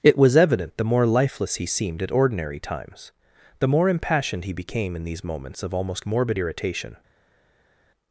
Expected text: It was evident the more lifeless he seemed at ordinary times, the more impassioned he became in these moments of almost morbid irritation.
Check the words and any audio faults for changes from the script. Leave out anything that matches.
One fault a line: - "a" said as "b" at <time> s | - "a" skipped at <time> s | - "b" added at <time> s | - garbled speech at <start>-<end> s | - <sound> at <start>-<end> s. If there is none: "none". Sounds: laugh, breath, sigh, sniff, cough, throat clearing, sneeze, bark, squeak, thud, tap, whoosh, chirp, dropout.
none